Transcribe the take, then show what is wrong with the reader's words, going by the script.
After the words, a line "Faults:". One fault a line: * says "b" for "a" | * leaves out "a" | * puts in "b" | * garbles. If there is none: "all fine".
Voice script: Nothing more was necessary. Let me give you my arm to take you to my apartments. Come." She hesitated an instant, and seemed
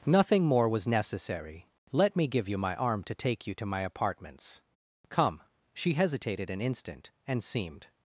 Nothing more was necessary. Let me give you my arm to take you to my apartments. Come." She hesitated an instant, and seemed
Faults:
all fine